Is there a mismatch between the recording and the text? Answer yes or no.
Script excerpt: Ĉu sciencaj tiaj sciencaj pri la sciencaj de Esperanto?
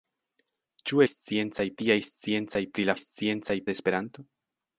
no